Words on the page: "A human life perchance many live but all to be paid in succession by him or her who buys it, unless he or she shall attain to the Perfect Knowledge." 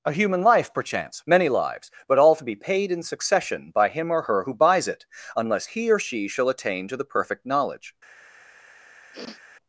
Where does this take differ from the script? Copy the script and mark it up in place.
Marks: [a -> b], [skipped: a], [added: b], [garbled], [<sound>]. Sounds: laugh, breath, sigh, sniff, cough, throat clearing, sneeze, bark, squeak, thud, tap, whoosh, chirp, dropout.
"A human life perchance many [live -> lives] but all to be paid in succession by him or her who buys it, unless he or she shall attain to the Perfect Knowledge." [sniff]